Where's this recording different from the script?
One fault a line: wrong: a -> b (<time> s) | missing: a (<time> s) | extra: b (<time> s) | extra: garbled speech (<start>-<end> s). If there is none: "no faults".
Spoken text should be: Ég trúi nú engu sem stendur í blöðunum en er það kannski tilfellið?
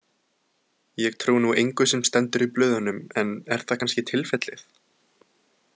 no faults